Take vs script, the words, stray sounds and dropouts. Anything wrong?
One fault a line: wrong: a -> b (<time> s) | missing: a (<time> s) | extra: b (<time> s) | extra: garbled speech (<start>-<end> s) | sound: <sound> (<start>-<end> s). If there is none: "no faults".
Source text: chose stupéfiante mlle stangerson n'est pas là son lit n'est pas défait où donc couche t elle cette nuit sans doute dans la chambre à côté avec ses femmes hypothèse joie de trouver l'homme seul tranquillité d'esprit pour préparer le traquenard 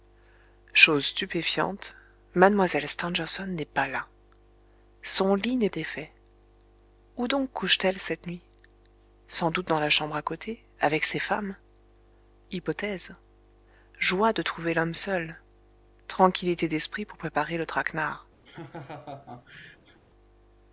missing: pas (5.7 s)
sound: laugh (18.4-20.0 s)